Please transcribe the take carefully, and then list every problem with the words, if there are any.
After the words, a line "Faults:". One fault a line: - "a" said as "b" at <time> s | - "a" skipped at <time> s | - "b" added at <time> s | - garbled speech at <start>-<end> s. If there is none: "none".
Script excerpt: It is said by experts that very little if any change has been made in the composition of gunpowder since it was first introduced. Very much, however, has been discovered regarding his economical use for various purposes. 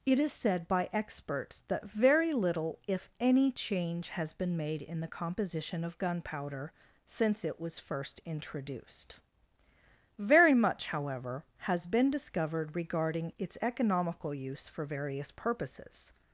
It is said by experts that very little if any change has been made in the composition of gunpowder since it was first introduced. Very much, however, has been discovered regarding its economical use for various purposes.
Faults:
- "his" said as "its" at 13.4 s